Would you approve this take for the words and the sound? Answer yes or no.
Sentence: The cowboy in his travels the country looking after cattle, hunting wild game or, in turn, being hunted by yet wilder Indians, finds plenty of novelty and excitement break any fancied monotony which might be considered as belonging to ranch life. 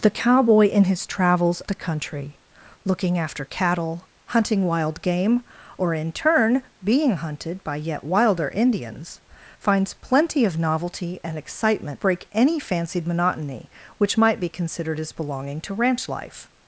yes